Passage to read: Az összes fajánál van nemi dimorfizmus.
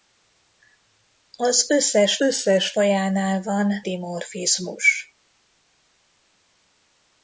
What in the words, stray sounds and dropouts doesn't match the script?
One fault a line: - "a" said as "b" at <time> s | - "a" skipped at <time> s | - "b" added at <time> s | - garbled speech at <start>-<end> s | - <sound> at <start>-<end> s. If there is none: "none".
- "összes" added at 2.2 s
- "nemi" skipped at 3.8 s